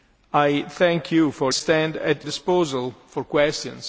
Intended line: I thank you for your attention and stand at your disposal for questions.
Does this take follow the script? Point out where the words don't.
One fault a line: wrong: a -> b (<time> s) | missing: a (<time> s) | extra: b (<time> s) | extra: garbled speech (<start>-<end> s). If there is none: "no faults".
missing: your attention and (1.5 s)
missing: your (2.3 s)